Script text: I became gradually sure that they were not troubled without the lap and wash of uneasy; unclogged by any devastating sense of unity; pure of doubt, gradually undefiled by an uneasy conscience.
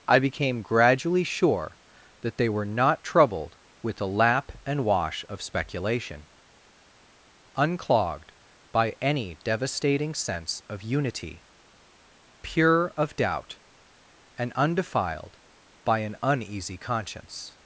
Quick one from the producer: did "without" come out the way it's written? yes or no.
no